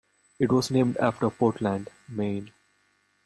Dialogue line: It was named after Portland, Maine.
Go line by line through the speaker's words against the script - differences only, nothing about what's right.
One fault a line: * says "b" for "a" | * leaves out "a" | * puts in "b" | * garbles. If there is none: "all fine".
all fine